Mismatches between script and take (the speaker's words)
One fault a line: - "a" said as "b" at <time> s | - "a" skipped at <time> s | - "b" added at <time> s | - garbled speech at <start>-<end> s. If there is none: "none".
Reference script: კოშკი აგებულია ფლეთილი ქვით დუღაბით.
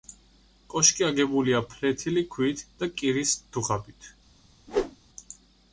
- "და კირის" added at 2.8 s